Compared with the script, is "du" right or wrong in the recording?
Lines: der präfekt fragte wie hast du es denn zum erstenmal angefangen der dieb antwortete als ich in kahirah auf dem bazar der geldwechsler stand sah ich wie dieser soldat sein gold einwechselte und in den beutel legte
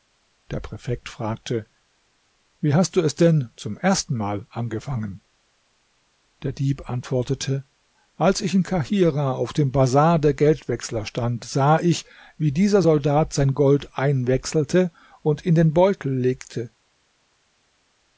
right